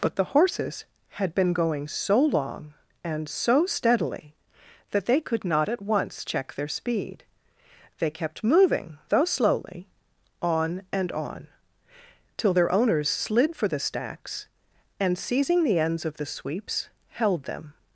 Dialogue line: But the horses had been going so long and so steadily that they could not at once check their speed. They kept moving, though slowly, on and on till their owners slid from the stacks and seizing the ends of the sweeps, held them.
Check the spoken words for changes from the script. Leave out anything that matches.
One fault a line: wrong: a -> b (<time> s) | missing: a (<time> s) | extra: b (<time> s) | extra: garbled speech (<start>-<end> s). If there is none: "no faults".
wrong: from -> for (13.6 s)